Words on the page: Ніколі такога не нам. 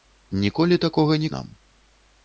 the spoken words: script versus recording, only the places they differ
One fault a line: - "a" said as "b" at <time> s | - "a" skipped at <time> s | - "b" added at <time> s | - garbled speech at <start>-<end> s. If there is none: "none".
none